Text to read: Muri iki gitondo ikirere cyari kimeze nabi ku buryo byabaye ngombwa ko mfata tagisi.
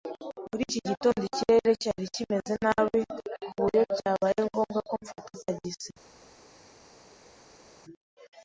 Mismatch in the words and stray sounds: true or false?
false